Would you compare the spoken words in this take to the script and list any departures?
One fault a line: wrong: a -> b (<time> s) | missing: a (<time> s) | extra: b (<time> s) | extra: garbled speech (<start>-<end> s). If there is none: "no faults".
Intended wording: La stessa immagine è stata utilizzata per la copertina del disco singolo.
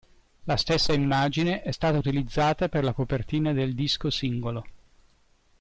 no faults